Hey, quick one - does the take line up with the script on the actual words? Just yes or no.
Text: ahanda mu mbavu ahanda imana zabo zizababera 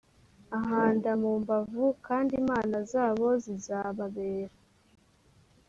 no